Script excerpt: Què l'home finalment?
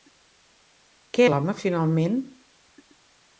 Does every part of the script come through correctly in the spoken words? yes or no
yes